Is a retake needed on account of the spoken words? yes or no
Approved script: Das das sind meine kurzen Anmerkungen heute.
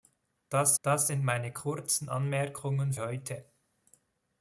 no